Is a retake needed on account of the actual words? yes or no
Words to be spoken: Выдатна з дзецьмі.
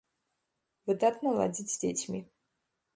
yes